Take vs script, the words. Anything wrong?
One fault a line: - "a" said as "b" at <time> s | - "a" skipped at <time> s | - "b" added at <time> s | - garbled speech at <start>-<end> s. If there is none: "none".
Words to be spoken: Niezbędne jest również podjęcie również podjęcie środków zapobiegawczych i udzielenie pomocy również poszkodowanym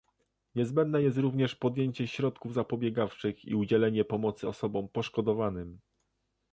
- "również podjęcie" skipped at 2.1 s
- "również" said as "osobom" at 4.5 s